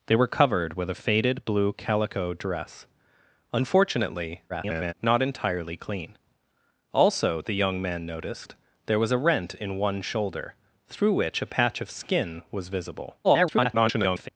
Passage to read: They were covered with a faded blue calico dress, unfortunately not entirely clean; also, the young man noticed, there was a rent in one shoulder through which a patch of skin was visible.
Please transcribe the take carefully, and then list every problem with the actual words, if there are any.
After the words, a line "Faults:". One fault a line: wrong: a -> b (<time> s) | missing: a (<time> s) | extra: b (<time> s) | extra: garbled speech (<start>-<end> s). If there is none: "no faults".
They were covered with a faded blue calico dress, unfortunately [garbled] not entirely clean; also, the young man noticed, there was a rent in one shoulder through which a patch of skin was visible. [garbled]
Faults:
extra: garbled speech (4.5-4.9 s)
extra: garbled speech (13.2-14.3 s)